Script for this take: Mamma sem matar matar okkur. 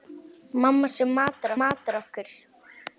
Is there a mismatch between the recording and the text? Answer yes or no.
no